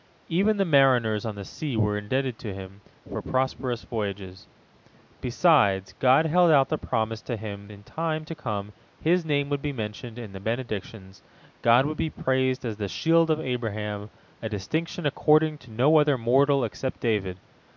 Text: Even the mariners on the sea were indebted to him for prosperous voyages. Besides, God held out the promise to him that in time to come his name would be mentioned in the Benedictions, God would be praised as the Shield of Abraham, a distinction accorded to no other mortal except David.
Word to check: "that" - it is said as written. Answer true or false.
false